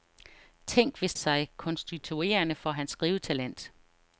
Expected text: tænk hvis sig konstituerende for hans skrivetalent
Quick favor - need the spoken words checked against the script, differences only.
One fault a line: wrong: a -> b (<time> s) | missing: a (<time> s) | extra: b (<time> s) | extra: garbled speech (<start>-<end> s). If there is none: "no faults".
no faults